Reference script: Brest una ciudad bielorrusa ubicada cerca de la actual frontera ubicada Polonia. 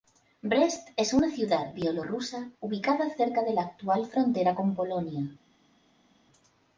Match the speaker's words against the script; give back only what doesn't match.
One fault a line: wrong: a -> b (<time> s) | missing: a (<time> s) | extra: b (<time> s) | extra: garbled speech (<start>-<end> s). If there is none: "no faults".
extra: es (1.0 s)
wrong: ubicada -> con (4.5 s)